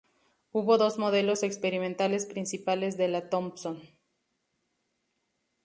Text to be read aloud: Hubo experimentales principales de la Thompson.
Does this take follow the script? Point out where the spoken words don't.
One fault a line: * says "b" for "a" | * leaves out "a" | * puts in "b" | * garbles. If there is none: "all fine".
* puts in "dos modelos"